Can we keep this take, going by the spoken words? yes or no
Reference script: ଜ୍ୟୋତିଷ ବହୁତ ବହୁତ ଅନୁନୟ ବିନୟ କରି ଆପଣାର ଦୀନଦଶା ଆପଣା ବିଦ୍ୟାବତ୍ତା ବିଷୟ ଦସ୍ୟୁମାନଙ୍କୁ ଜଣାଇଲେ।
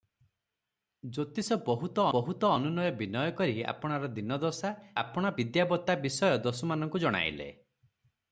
yes